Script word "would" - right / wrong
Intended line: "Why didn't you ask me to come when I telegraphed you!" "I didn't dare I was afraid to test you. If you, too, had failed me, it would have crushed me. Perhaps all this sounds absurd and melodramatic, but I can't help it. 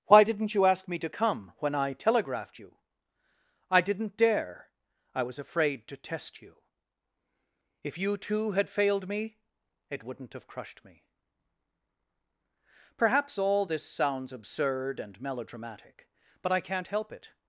wrong